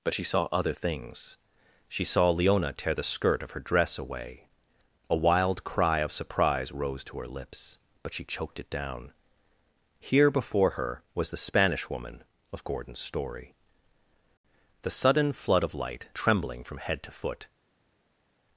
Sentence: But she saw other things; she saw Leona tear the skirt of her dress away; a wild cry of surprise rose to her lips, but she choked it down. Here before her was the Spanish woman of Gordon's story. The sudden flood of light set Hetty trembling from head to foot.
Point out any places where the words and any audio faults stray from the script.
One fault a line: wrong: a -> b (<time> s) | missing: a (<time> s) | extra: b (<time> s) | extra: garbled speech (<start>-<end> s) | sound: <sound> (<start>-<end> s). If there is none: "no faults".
missing: set Hetty (16.1 s)